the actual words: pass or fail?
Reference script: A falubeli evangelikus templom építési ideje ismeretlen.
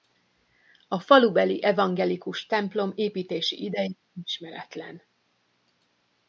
pass